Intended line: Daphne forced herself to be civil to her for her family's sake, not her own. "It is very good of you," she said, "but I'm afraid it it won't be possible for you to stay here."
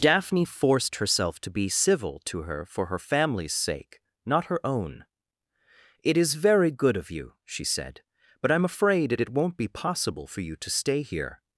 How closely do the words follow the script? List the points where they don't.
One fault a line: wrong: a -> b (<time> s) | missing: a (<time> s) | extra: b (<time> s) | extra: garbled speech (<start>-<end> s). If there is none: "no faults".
no faults